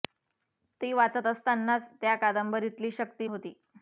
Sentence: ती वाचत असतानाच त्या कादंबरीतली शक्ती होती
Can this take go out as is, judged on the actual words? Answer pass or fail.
pass